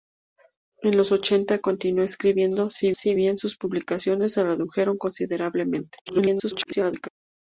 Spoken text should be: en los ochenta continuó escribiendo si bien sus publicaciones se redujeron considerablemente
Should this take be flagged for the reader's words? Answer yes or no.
yes